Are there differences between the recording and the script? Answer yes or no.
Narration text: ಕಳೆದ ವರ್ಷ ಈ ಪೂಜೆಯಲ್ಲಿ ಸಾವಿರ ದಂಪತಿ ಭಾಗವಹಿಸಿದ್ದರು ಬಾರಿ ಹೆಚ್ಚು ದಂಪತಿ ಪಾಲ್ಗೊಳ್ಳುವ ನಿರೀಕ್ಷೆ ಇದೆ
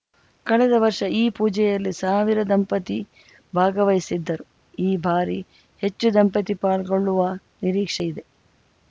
yes